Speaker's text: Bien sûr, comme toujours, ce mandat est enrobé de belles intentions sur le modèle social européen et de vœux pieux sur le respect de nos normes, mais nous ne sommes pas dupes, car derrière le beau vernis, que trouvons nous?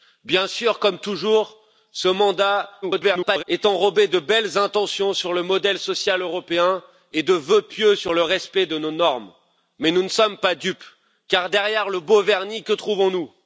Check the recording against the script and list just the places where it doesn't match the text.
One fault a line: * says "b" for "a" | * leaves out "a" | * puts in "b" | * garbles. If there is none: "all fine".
* garbles